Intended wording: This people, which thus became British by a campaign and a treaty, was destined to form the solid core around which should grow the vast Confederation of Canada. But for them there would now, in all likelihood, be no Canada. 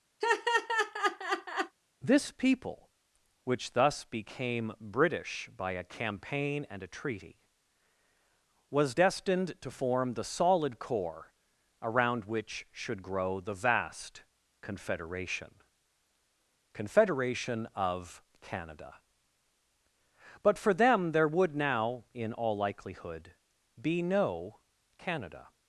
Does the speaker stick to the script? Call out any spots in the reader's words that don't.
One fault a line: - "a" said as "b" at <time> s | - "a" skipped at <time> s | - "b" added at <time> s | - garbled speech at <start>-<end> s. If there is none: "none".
- "Confederation" added at 16.7 s